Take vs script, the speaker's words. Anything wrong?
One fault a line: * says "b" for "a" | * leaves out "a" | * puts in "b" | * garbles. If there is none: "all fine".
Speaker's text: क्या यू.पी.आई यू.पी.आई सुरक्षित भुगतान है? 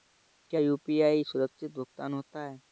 * leaves out "यू.पी.आई"
* puts in "होता"